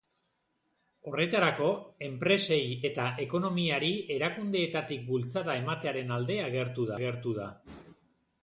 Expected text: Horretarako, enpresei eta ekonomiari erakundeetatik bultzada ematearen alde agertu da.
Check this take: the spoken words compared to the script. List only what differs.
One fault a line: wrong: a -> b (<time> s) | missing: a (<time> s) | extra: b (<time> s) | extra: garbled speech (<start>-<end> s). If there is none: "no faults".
extra: agertu (7.0 s)